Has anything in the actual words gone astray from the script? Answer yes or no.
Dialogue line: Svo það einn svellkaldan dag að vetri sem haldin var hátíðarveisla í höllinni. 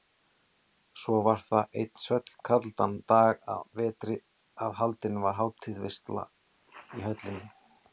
yes